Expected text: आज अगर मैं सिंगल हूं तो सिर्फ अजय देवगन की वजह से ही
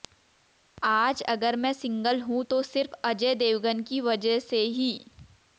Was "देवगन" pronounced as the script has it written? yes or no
yes